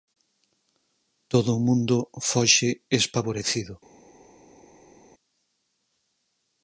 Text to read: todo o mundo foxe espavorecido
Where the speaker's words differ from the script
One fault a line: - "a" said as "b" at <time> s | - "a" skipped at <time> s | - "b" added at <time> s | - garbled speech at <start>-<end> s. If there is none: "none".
none